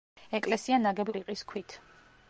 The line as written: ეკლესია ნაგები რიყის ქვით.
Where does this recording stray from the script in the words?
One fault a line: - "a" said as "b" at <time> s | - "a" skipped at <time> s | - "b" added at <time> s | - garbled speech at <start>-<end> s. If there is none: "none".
none